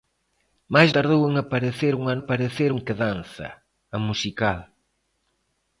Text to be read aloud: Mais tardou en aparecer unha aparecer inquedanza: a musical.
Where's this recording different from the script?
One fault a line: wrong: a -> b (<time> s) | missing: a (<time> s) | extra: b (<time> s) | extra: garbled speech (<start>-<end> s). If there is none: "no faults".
no faults